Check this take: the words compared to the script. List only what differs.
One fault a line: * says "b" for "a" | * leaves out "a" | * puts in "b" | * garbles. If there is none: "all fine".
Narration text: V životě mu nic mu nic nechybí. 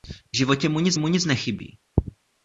all fine